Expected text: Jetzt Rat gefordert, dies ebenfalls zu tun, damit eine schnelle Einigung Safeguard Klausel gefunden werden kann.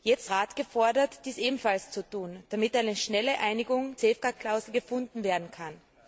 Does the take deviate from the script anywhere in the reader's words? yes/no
no